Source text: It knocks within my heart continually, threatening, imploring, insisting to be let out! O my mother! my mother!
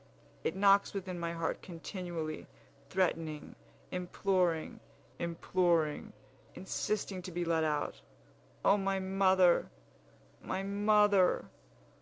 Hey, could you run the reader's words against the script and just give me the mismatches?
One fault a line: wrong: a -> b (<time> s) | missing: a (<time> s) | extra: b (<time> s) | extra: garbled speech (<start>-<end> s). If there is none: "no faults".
extra: imploring (5.2 s)